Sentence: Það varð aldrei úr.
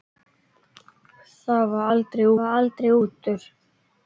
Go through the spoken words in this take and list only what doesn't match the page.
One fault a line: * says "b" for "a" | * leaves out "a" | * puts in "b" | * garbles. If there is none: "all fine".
* puts in "varð aldrei"